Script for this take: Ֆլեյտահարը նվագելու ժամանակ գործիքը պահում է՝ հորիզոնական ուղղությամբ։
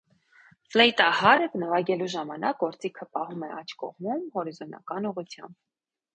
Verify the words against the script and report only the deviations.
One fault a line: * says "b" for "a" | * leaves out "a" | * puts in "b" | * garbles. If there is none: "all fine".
* puts in "աջ կողմում"